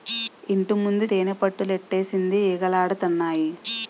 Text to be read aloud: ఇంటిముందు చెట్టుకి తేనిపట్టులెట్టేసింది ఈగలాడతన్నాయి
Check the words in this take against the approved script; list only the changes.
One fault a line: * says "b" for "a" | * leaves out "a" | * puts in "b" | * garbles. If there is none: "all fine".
* leaves out "చెట్టుకి"